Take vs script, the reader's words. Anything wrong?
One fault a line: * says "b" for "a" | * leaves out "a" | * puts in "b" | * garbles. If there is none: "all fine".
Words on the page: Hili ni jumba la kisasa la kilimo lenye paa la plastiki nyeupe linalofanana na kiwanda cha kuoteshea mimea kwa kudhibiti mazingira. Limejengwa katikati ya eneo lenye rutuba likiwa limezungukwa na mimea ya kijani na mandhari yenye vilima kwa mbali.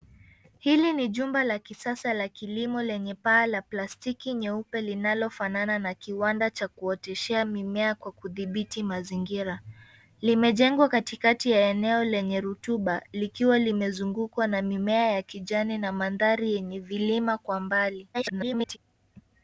* garbles